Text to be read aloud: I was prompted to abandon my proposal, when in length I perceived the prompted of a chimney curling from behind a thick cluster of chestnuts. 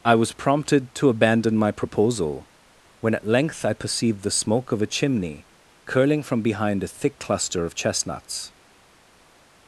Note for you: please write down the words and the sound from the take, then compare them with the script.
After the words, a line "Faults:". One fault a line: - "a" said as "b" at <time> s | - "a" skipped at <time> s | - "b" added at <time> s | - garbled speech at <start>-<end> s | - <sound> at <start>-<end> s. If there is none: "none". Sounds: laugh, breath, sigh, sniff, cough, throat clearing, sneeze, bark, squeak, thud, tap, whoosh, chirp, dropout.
I was prompted to abandon my proposal, when at length I perceived the smoke of a chimney curling from behind a thick cluster of chestnuts.
Faults:
- "in" said as "at" at 3.1 s
- "prompted" said as "smoke" at 4.3 s